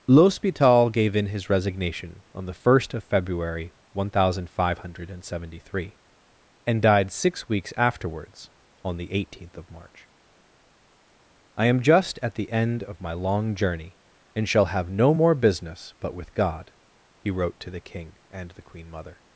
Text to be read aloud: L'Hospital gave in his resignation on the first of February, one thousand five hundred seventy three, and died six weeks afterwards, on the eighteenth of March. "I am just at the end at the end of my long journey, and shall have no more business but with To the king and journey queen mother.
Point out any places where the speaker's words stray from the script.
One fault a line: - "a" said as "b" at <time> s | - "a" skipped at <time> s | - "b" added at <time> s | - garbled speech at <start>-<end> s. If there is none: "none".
- "at the end" skipped at 12.8 s
- "God he wrote" added at 16.3 s
- "journey" said as "the" at 18.5 s